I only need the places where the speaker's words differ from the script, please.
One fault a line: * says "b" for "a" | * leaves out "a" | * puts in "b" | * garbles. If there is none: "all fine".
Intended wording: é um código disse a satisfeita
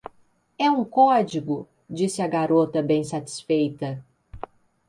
* puts in "garota bem"